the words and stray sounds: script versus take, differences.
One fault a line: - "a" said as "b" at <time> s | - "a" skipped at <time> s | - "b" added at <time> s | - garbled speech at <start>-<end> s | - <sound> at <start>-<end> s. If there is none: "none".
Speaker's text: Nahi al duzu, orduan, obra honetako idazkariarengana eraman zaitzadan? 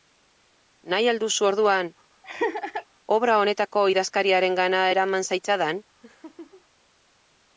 - laugh at 2.2-2.8 s
- laugh at 6.0-6.6 s